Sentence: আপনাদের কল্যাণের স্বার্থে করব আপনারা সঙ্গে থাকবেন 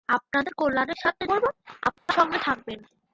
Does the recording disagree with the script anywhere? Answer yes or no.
no